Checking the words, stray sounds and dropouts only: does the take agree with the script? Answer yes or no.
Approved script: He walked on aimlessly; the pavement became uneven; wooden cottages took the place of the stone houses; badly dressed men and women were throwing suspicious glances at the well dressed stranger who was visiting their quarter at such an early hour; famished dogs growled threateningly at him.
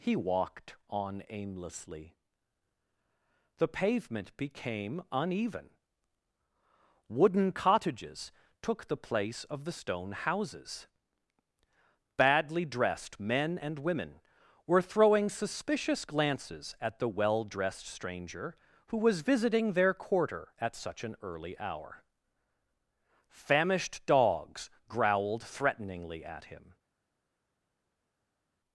yes